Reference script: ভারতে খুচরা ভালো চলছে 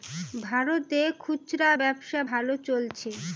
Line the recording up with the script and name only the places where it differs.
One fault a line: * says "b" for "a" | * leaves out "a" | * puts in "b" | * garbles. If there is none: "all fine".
* puts in "ব্যবসা"